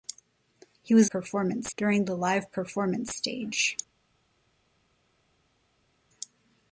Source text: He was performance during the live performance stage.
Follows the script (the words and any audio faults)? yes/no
yes